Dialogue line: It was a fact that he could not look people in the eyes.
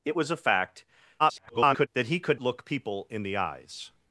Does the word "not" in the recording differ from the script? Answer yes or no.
yes